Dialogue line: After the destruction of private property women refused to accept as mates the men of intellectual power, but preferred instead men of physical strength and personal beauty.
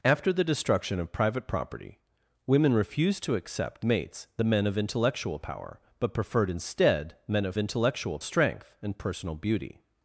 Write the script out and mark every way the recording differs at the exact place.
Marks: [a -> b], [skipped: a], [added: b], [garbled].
After the destruction of private property women refused to accept [skipped: as] mates the men of intellectual power, but preferred instead men of [physical -> intellectual] strength and personal beauty.